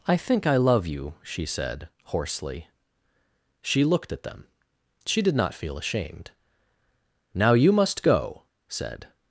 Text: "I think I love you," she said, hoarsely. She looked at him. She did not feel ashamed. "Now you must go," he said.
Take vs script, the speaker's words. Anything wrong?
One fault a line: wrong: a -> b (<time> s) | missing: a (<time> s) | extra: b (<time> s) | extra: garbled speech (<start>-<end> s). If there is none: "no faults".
wrong: him -> them (4.2 s)
missing: he (8.4 s)